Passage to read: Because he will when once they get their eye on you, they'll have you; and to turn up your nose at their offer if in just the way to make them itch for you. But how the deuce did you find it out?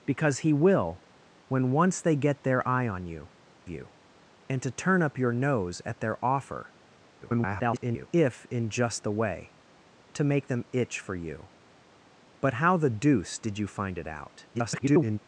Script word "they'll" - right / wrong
wrong